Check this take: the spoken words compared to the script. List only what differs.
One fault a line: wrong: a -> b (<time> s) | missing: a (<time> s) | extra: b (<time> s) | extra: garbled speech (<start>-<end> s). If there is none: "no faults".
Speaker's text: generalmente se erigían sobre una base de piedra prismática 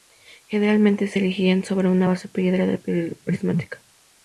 no faults